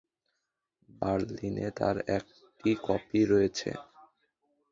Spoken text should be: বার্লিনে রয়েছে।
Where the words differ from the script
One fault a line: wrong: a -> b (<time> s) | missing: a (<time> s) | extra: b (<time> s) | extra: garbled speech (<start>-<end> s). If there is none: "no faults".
extra: তার একটি কপি (1.8 s)